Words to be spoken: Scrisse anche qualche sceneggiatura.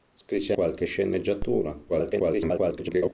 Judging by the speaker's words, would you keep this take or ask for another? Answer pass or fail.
fail